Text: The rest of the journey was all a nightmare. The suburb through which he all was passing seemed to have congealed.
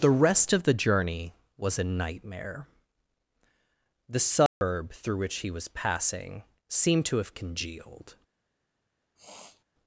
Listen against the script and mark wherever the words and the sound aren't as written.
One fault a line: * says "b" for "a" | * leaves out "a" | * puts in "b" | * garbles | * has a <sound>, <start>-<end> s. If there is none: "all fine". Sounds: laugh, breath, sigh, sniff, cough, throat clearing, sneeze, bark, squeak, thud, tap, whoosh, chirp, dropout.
* leaves out "all"
* has a dropout, 4.5-4.6 s
* leaves out "all"
* has a sniff, 9.2-9.6 s